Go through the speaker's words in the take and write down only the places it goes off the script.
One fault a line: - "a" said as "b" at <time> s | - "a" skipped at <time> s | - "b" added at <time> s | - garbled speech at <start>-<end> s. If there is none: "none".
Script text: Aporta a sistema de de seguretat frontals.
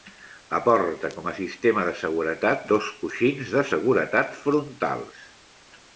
- "com" added at 1.2 s
- "seguretat dos coixins" added at 2.0 s